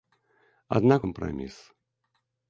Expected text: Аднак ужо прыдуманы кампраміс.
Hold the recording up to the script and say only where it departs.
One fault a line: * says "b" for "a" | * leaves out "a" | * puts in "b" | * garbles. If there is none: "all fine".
* leaves out "ужо прыдуманы"